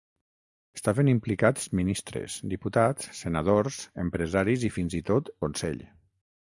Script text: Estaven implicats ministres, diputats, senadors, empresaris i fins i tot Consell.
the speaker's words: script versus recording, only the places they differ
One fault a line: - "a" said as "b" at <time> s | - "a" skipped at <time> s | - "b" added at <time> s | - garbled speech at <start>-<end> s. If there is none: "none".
none